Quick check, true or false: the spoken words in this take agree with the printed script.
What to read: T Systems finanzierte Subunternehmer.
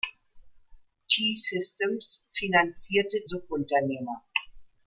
true